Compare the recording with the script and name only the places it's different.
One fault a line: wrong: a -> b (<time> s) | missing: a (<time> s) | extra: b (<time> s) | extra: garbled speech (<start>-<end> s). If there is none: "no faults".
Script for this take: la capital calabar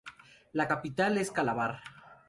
extra: es (1.2 s)